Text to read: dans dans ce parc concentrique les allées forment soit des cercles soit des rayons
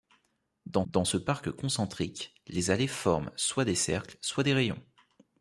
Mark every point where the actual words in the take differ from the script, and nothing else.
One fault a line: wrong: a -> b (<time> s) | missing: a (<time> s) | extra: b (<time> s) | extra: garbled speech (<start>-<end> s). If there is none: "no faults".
no faults